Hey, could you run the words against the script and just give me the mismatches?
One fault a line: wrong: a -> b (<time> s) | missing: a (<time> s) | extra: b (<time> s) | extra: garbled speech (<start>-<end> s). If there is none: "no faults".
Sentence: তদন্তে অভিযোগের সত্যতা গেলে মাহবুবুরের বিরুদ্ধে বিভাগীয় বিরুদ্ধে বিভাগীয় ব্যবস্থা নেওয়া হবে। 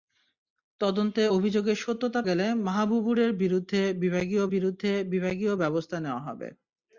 no faults